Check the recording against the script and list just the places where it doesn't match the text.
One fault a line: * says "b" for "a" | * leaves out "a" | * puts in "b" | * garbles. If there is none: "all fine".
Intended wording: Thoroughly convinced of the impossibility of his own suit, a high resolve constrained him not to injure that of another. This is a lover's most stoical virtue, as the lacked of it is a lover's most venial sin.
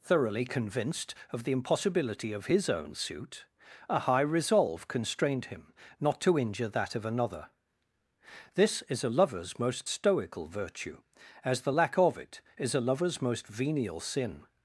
* says "lack" for "lacked"